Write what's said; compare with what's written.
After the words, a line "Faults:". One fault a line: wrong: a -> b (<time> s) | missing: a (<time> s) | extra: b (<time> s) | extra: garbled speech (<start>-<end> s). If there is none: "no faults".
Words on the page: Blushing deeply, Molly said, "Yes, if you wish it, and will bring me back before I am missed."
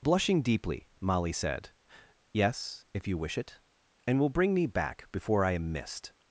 Blushing deeply, Molly said, "Yes, if you wish it, and will bring me back before I am missed."
Faults:
no faults